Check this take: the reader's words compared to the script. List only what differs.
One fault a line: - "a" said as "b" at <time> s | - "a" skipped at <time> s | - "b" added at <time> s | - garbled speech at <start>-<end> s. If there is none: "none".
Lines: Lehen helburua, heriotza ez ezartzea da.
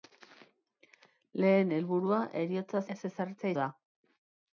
none